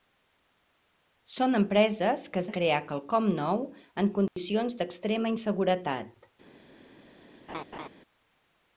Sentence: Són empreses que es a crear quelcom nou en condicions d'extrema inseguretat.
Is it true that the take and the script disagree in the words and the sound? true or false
true